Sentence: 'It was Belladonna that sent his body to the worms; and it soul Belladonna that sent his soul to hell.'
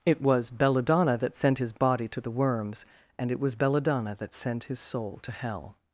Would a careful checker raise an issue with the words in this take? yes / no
yes